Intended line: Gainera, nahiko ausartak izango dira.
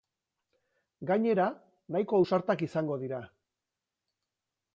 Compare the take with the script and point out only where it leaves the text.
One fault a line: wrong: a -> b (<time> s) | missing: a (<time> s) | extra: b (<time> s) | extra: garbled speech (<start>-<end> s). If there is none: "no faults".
no faults